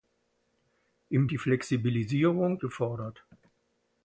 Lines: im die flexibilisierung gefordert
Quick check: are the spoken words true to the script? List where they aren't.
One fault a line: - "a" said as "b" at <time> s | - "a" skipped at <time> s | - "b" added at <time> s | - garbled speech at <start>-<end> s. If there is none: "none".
none